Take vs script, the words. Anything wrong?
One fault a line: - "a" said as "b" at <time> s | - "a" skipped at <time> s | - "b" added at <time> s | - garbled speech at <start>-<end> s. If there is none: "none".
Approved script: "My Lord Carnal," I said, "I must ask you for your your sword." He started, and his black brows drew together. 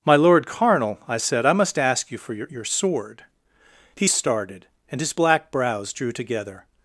none